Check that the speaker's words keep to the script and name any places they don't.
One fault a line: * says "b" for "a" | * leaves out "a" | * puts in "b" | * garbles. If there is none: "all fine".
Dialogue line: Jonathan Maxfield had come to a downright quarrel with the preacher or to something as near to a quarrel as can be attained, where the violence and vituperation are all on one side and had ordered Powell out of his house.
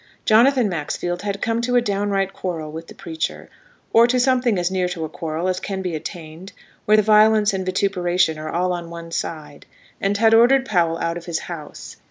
all fine